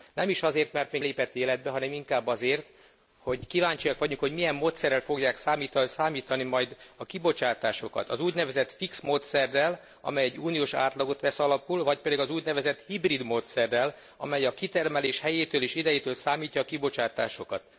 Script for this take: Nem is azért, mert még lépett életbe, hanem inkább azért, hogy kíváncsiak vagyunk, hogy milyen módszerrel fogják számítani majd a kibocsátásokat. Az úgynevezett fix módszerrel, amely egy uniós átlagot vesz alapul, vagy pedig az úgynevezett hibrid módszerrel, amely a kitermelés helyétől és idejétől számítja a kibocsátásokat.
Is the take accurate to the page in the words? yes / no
yes